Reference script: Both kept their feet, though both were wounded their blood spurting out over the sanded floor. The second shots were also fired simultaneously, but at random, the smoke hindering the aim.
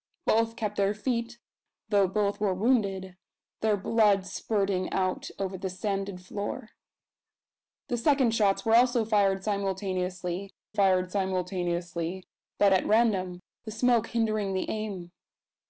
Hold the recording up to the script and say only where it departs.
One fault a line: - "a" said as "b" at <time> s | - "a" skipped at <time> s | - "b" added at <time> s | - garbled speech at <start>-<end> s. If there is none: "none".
- "fired simultaneously" added at 10.7 s